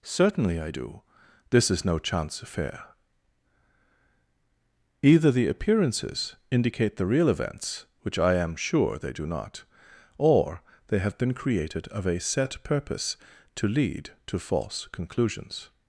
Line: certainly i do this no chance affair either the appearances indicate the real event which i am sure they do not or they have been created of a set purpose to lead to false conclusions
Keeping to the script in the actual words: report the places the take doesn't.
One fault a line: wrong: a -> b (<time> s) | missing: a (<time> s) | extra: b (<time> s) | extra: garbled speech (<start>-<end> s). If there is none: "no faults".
extra: is (1.7 s)
wrong: event -> events (7.3 s)